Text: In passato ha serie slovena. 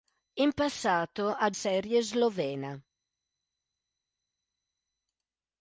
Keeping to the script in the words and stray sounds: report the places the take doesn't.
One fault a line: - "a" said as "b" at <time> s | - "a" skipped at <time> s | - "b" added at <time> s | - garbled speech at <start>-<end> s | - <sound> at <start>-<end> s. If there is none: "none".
none